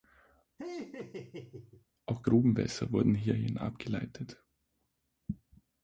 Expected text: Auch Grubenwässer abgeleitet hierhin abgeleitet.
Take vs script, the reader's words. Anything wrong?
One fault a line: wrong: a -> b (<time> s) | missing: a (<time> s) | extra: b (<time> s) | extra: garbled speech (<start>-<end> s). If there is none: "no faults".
wrong: abgeleitet -> wurden (2.9 s)